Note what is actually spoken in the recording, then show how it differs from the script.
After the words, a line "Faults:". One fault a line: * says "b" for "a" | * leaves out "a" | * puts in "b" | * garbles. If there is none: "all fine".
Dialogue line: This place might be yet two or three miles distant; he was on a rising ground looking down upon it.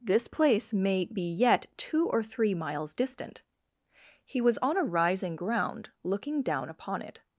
This place may be yet two or three miles distant; he was on a rising ground looking down upon it.
Faults:
* says "may" for "might"